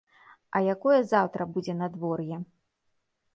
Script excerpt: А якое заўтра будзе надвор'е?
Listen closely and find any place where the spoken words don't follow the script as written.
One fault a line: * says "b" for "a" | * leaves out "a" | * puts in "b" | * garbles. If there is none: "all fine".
all fine